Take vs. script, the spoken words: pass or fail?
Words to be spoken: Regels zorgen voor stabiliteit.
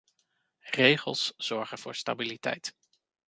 pass